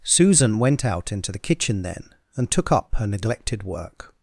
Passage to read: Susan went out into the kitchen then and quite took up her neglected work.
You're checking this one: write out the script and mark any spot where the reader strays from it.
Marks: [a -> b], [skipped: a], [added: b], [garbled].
Susan went out into the kitchen then and [skipped: quite] took up her neglected work.